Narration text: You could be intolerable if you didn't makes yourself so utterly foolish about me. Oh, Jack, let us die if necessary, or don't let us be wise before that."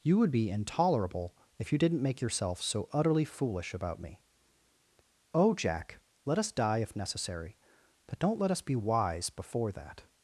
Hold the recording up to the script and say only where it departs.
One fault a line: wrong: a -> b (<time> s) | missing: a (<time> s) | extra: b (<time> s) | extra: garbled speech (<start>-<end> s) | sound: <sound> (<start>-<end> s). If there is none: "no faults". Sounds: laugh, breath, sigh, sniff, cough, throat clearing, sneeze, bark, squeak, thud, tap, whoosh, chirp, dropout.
wrong: could -> would (0.2 s)
wrong: makes -> make (2.0 s)
wrong: or -> but (8.1 s)